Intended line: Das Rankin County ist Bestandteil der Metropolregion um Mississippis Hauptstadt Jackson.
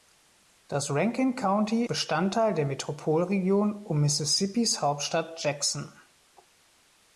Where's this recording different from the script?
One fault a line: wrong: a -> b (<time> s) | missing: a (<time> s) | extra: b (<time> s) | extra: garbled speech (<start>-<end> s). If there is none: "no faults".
missing: ist (1.9 s)